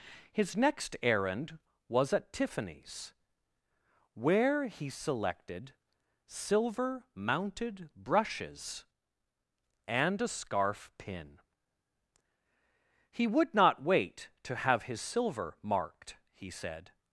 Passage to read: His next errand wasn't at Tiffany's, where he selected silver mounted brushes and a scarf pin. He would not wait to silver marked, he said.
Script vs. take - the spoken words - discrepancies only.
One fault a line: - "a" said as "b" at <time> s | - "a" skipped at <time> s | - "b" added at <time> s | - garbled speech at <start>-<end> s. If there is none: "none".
- "wasn't" said as "was" at 1.9 s
- "have his" added at 14.6 s